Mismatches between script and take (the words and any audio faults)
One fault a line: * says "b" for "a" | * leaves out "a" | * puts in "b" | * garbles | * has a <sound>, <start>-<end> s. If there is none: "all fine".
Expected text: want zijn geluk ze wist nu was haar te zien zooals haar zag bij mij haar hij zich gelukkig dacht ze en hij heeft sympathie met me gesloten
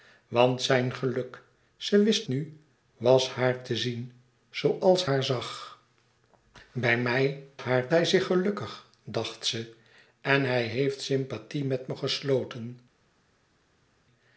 all fine